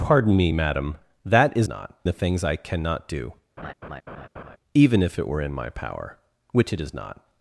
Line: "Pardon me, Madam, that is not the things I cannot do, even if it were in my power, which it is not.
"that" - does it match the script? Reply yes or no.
yes